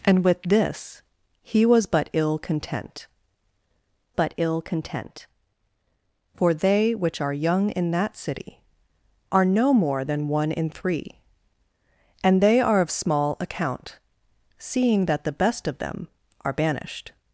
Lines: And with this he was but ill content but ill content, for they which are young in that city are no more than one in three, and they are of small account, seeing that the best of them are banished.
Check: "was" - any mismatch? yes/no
no